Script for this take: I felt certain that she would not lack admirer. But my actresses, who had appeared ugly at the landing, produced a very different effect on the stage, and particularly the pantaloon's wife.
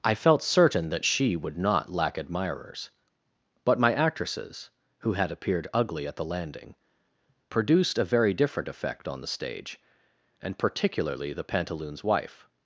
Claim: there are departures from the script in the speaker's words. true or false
true